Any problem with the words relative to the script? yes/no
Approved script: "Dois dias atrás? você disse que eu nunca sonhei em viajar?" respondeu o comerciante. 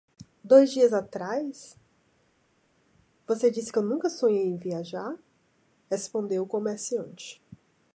no